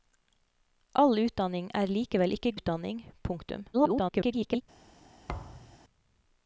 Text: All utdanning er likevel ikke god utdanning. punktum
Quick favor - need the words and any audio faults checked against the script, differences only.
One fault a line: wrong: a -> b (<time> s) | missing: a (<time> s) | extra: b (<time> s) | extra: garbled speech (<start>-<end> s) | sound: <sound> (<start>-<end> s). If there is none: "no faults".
missing: god (2.5 s)
extra: garbled speech (3.7-4.6 s)
sound: thud (5.3-5.8 s)